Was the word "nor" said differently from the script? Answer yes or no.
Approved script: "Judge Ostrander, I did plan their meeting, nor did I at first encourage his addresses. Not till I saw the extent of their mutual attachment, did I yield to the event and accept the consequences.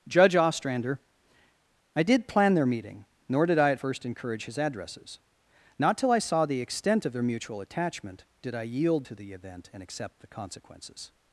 no